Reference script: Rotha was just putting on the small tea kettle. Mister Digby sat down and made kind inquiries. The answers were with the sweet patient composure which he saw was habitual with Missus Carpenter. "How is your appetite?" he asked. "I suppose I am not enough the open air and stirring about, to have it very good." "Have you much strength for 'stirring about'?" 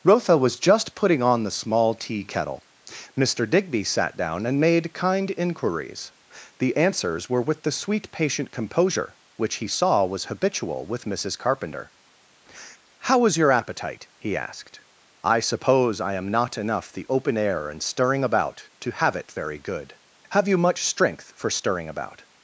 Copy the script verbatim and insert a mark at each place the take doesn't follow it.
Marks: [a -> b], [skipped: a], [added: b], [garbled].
Rotha was just putting on the small tea kettle. Mister Digby sat down and made kind inquiries. The answers were with the sweet patient composure which he saw was habitual with Missus Carpenter. "How is your appetite?" he asked. "I suppose I am not enough the open air and stirring about, to have it very good." "Have you much strength for 'stirring about'?"